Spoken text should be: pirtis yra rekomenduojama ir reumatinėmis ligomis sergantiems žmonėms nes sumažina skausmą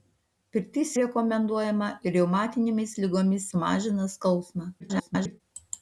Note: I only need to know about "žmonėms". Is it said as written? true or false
false